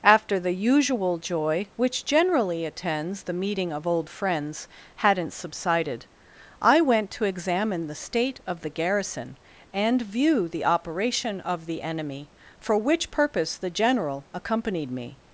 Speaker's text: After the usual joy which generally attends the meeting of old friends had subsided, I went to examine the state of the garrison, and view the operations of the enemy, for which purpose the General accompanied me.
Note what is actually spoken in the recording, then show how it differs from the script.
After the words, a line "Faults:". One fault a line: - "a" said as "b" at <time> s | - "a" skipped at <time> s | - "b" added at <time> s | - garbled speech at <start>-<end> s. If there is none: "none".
After the usual joy which generally attends the meeting of old friends hadn't subsided, I went to examine the state of the garrison, and view the operation of the enemy, for which purpose the General accompanied me.
Faults:
- "had" said as "hadn't" at 5.0 s
- "operations" said as "operation" at 10.7 s